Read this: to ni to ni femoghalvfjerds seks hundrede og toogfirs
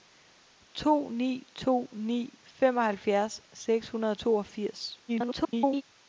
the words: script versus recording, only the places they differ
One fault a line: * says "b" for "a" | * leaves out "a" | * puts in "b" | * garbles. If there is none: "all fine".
* garbles